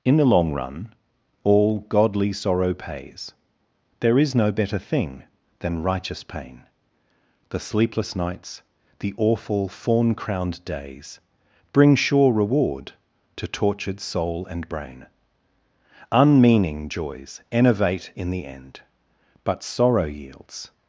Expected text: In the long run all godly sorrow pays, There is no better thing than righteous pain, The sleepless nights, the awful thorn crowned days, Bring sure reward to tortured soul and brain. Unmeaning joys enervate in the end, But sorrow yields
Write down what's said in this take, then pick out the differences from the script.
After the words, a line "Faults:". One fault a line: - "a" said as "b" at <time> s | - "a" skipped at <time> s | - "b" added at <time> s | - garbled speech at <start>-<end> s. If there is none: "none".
In the long run all godly sorrow pays, There is no better thing than righteous pain, The sleepless nights, the awful thorn crowned days, Bring sure reward to tortured soul and brain. Unmeaning joys enervate in the end, But sorrow yields
Faults:
none